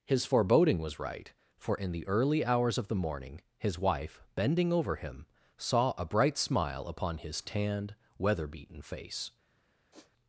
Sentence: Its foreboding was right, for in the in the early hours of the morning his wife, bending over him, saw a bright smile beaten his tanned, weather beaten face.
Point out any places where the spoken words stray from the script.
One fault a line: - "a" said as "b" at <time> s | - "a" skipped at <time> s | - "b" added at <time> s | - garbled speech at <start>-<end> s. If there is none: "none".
- "Its" said as "His" at 0.1 s
- "in the" skipped at 2.1 s
- "beaten" said as "upon" at 6.9 s